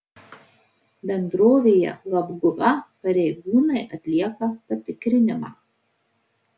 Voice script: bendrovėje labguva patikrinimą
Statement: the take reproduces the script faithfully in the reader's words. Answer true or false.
false